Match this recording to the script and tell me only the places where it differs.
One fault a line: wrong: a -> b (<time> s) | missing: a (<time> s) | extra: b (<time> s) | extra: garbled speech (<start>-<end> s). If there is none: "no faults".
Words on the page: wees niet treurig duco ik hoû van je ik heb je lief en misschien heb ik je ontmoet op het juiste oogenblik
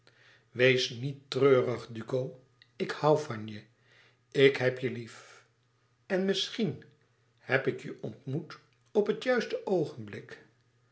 no faults